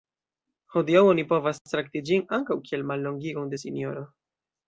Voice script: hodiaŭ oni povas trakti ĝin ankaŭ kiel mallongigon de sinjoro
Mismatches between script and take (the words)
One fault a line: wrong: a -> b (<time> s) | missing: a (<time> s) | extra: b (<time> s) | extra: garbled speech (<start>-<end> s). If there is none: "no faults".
no faults